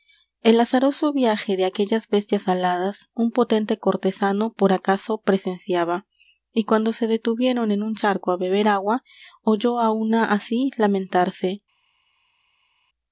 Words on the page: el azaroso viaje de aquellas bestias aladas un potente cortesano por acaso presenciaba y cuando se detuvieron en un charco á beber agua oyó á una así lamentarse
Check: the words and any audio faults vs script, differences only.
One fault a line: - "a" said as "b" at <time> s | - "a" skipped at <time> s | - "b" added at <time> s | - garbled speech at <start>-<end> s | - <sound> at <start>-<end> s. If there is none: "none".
none